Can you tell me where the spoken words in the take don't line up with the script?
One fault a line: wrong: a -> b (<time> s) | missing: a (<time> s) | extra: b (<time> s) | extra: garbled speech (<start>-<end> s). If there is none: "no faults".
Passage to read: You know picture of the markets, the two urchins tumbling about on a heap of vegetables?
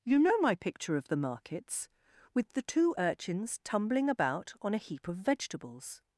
extra: my (0.4 s)
extra: with (2.3 s)